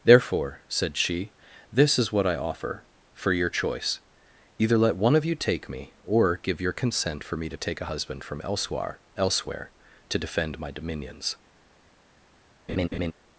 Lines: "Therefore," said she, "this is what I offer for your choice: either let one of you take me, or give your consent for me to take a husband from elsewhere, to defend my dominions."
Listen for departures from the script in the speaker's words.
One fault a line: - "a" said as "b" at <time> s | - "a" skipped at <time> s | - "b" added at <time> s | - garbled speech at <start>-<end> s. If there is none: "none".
- "elsewhere" added at 9.2 s